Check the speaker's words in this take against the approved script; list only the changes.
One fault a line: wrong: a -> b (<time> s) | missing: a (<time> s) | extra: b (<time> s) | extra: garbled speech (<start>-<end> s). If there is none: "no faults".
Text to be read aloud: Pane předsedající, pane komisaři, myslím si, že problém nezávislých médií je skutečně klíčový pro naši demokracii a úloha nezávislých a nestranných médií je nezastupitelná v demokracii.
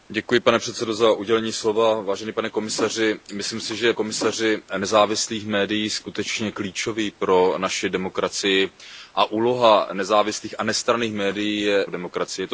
wrong: problém -> komisaři (3.9 s)
missing: nezastupitelná (11.9 s)